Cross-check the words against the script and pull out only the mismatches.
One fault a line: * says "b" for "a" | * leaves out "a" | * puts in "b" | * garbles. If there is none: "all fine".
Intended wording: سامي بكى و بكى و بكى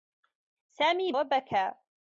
* leaves out "بكى و بكى"